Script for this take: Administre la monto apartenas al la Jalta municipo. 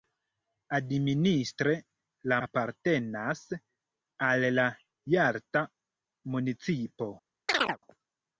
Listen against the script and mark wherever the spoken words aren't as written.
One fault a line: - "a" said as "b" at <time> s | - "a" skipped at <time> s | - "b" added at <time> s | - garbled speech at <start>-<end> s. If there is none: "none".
- "monto" skipped at 2.4 s